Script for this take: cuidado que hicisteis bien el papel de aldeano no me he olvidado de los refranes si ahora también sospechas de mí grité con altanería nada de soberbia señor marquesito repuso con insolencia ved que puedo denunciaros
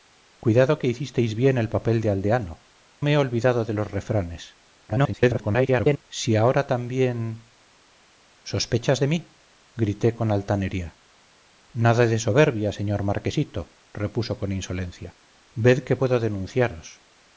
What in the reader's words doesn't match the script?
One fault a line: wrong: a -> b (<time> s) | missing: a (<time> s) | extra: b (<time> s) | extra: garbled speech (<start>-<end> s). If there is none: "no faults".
missing: no (2.6 s)
extra: garbled speech (4.9-6.0 s)